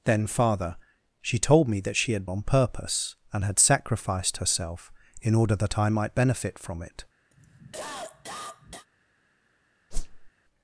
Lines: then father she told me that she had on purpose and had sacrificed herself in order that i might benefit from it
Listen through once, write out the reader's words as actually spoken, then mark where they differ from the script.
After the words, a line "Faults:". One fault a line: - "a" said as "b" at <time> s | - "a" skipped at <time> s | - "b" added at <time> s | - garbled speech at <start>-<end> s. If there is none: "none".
then father she told me that she had on purpose and had sacrificed herself in order that i might benefit from it
Faults:
none